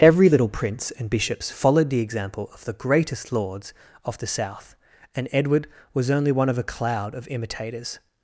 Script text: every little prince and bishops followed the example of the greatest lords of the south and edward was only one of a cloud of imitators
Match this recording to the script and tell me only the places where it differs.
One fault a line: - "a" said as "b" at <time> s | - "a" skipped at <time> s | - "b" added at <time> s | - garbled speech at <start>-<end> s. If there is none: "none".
none